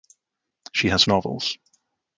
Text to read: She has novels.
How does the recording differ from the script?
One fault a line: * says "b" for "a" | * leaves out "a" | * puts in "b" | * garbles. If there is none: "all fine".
all fine